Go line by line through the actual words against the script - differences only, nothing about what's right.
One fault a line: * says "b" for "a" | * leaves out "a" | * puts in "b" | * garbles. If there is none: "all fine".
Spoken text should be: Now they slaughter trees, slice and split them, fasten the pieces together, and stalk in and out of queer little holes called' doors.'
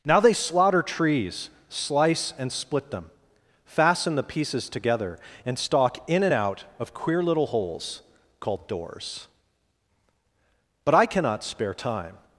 * puts in "But I cannot spare time"